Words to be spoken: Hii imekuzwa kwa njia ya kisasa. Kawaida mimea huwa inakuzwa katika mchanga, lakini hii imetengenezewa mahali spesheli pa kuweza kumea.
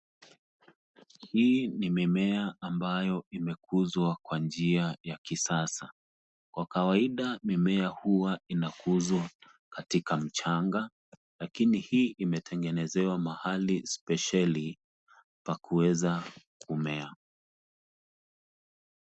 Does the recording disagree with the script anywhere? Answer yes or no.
yes